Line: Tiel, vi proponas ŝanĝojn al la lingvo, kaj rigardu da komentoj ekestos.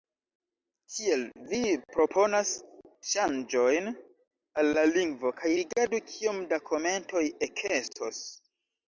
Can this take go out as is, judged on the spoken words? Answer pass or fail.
fail